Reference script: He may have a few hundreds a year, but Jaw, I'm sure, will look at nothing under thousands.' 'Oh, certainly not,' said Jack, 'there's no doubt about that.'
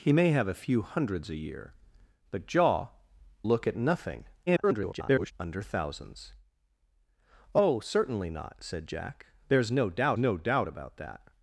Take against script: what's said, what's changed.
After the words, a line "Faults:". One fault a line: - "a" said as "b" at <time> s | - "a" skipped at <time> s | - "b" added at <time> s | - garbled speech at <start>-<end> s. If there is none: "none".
He may have a few hundreds a year, but Jaw, Look at nothing [garbled] under thousands.' 'Oh, certainly not,' said Jack, 'there's no doubt no doubt about that.'
Faults:
- "I'm sure will" skipped at 2.9 s
- garbled speech at 4.5-5.3 s
- "no doubt" added at 10.2 s